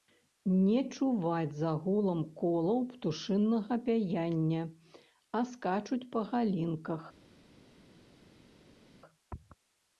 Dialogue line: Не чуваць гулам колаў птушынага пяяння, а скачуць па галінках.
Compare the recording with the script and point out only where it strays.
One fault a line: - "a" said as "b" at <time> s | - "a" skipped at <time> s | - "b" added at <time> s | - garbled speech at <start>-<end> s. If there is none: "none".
- "за" added at 1.6 s